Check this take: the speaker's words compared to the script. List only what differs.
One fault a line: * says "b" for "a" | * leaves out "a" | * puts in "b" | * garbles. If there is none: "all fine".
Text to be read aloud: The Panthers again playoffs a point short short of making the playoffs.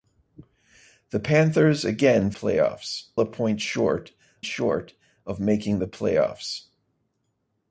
all fine